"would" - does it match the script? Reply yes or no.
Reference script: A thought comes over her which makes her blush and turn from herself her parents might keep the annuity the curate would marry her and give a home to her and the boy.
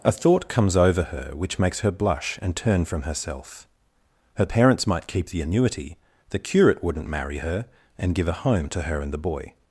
no